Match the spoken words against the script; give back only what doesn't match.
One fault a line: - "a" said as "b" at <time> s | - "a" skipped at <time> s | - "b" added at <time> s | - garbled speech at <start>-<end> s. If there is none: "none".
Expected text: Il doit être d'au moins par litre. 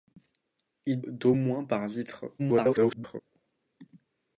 - "doit être" skipped at 1.0 s
- garbled speech at 2.4-3.2 s